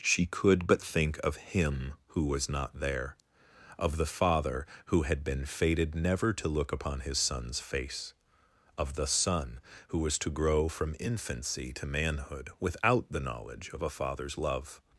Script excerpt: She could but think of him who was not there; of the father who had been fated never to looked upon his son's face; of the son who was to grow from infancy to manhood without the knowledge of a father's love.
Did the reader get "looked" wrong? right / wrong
wrong